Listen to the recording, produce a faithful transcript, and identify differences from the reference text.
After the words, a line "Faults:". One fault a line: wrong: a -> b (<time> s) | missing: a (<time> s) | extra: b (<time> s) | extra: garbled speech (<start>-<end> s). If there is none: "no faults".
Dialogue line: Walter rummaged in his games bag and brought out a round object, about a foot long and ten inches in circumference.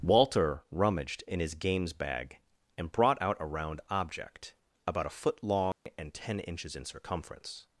Walter rummaged in his games bag and brought out a round object, about a foot long and ten inches in circumference.
Faults:
no faults